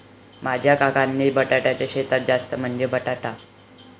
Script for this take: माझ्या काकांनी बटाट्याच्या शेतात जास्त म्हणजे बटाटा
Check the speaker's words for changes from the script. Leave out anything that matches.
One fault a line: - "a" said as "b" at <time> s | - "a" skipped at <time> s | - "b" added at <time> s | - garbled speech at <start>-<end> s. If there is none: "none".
none